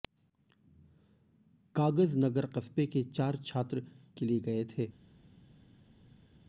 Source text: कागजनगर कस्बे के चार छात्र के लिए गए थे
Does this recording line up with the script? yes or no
yes